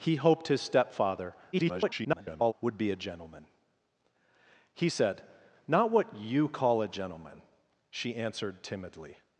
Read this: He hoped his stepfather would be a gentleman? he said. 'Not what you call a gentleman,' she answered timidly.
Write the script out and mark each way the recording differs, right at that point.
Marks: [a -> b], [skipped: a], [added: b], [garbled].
He hoped his stepfather [garbled] would be a gentleman? he said. 'Not what you call a gentleman,' she answered timidly.